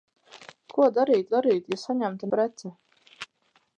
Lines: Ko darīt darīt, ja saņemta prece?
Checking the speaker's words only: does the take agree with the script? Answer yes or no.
yes